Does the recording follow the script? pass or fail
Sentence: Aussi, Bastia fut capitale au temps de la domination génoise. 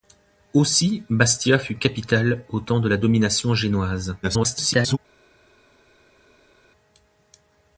fail